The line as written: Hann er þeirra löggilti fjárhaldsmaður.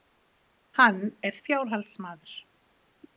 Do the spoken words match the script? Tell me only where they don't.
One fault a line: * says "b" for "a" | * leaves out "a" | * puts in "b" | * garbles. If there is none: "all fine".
* leaves out "þeirra löggilti"